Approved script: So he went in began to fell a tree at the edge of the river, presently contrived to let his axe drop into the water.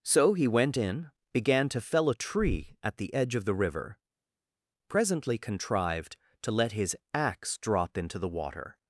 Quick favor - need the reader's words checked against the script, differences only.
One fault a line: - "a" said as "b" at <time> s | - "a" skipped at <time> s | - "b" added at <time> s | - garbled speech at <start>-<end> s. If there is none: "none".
none